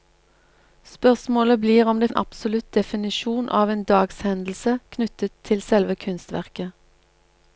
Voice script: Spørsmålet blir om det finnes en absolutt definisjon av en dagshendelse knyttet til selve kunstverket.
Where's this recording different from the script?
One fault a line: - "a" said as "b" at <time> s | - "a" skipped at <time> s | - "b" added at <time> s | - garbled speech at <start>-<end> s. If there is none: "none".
- "finnes" skipped at 2.1 s